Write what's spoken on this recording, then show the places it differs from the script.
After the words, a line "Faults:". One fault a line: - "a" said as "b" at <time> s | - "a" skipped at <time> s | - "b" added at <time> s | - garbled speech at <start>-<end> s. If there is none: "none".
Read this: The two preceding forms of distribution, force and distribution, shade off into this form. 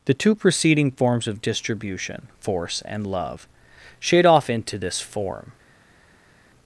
The two preceding forms of distribution, force and love, shade off into this form.
Faults:
- "distribution" said as "love" at 3.0 s